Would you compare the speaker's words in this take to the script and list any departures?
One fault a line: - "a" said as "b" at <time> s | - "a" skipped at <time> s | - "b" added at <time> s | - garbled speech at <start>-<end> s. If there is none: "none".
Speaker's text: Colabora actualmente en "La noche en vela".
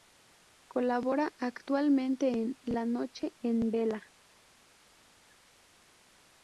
none